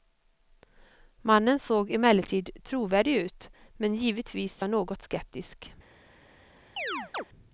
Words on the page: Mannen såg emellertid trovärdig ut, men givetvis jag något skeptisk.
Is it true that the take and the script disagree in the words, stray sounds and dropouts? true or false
true